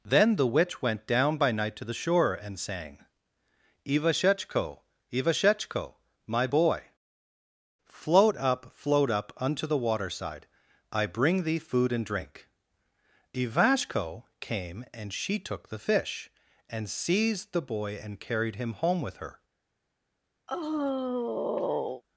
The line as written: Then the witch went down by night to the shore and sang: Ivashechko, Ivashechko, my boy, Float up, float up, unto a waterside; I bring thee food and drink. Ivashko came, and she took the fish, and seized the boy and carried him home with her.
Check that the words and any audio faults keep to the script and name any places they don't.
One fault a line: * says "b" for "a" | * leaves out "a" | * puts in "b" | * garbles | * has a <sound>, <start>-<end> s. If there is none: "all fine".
* says "the" for "a"
* has a sigh, 20.5-22.0 s